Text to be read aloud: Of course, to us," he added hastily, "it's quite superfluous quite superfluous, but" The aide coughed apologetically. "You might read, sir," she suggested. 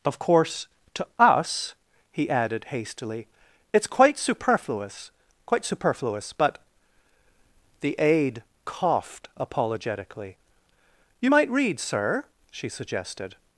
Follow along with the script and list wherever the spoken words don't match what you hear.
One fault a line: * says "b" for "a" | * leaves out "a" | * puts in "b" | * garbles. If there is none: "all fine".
all fine